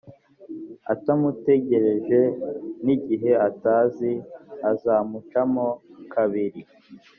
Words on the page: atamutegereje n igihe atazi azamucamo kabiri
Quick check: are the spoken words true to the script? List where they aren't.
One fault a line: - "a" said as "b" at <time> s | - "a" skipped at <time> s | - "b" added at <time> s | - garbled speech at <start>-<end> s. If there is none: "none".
none